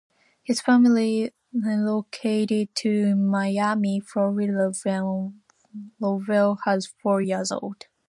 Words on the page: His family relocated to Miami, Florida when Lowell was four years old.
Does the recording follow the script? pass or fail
pass